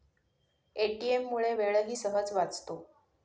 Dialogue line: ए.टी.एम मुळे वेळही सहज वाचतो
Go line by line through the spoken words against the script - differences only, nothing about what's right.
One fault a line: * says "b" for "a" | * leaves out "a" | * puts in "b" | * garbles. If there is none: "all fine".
all fine